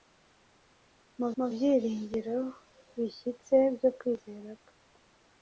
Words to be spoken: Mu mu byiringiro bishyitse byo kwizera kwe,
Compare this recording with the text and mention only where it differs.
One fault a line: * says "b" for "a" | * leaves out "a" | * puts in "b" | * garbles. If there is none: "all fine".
all fine